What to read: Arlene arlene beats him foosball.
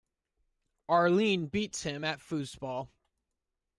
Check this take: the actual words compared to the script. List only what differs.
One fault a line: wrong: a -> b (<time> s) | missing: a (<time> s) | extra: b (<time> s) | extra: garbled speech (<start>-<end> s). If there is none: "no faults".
missing: arlene (1.4 s)
extra: at (2.0 s)